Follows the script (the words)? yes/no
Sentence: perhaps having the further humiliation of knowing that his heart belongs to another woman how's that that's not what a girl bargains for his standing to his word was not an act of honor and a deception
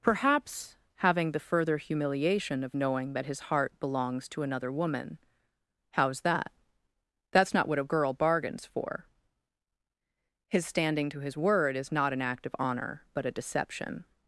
no